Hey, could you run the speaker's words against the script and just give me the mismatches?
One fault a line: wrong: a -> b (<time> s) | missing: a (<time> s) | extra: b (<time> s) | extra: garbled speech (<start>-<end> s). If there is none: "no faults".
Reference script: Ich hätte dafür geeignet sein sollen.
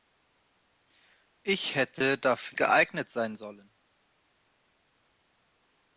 no faults